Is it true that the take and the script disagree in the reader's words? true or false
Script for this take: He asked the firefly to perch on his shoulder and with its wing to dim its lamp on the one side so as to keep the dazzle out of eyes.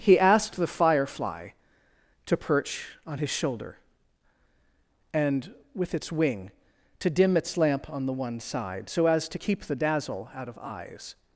false